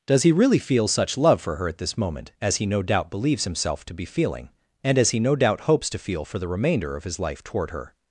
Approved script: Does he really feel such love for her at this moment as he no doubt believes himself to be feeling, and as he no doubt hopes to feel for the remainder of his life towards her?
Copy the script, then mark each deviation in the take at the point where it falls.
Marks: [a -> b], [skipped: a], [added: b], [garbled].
Does he really feel such love for her at this moment as he no doubt believes himself to be feeling, and as he no doubt hopes to feel for the remainder of his life [towards -> toward] her?